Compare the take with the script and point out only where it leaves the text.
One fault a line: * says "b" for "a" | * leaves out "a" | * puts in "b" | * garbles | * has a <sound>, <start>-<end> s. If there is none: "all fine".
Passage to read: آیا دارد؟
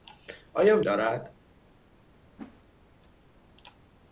* has a whoosh, 2.4-2.6 s